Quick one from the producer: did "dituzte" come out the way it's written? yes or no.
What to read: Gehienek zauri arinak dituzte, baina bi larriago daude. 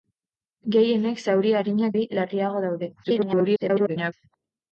no